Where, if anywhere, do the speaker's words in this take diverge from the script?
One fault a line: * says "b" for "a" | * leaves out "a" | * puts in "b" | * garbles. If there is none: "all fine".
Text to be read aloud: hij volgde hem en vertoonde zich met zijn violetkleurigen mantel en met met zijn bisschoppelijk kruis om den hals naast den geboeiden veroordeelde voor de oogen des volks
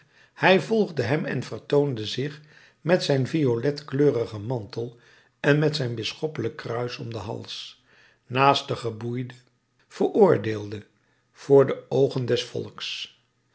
* leaves out "met"